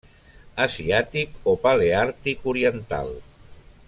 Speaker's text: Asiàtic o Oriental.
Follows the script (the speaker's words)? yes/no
no